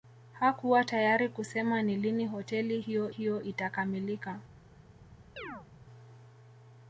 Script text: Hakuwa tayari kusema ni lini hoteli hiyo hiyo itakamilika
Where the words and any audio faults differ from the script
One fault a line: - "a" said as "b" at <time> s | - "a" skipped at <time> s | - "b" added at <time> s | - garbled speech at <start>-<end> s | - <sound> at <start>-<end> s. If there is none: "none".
- chirp at 5.4-5.7 s